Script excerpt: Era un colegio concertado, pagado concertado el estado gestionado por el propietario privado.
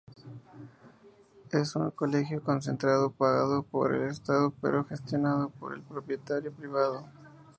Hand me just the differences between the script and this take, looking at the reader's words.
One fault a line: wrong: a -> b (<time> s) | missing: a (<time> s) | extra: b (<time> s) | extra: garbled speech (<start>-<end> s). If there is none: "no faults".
wrong: Era -> Es (1.5 s)
wrong: concertado -> por (3.6 s)
extra: pero (4.6 s)